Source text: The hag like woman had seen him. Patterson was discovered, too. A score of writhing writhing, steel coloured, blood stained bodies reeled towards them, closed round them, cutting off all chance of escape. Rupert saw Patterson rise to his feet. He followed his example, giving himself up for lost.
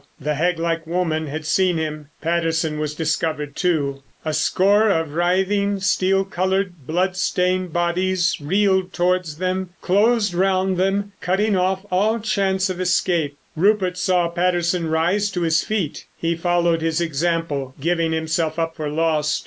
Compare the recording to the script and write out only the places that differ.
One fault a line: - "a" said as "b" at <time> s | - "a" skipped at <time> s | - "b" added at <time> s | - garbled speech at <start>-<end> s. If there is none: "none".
- "writhing" skipped at 5.8 s